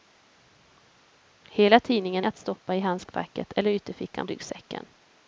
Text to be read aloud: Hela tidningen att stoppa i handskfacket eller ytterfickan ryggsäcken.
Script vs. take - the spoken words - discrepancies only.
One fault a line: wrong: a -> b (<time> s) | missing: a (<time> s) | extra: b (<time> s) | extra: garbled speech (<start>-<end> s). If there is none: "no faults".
no faults